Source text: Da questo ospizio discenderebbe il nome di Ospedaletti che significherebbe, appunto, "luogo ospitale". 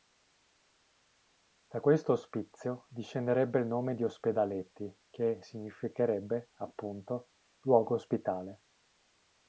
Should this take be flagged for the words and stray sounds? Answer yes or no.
no